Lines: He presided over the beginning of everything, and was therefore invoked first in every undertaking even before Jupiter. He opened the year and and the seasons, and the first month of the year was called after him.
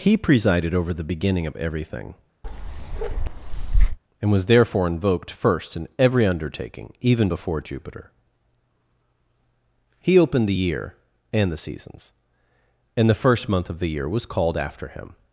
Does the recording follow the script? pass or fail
fail